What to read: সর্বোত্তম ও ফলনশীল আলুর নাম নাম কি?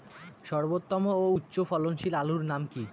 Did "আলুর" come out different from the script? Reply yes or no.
no